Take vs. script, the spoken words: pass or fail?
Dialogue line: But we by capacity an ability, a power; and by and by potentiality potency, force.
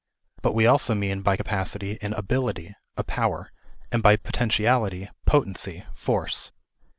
fail